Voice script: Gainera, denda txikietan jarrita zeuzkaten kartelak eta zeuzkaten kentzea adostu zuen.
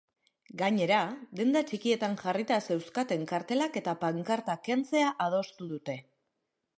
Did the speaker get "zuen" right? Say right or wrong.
wrong